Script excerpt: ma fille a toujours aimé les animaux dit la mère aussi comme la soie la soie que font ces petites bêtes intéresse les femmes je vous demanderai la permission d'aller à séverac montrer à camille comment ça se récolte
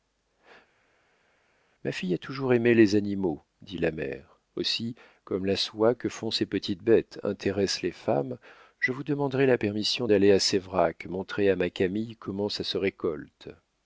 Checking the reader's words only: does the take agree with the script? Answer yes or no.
no